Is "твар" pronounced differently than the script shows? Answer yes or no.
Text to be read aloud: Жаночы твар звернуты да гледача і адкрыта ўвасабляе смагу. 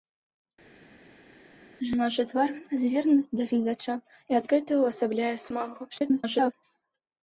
no